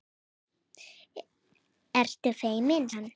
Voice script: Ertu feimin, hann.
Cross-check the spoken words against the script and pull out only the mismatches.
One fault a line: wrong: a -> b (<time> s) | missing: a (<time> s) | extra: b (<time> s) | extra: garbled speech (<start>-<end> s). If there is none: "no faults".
no faults